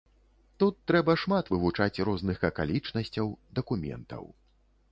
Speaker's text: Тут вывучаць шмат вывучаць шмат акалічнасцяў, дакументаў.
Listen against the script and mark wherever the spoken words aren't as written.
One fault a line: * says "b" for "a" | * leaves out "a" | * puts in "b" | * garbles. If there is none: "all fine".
* says "трэба" for "вывучаць"
* says "розных" for "шмат"